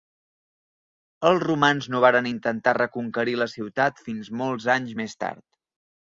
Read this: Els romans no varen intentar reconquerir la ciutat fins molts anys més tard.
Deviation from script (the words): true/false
false